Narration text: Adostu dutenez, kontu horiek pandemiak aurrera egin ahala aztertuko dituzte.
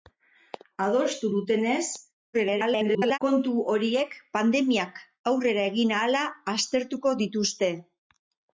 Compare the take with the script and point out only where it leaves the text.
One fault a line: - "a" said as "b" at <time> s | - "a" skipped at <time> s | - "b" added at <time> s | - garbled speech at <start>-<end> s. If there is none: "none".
- garbled speech at 2.3-3.2 s